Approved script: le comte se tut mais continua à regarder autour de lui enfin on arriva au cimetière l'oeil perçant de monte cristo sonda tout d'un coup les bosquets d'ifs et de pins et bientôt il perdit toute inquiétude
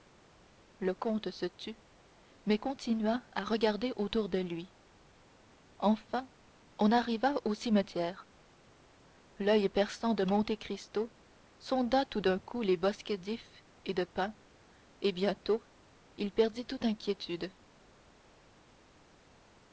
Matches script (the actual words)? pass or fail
pass